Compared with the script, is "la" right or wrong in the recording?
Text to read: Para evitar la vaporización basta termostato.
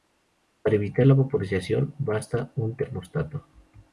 right